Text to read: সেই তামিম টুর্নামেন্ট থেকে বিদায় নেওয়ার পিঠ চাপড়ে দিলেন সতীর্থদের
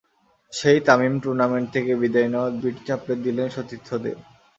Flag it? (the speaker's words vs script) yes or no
no